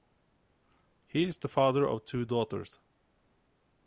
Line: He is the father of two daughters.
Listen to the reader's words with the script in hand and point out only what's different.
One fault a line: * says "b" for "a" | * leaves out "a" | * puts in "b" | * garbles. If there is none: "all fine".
all fine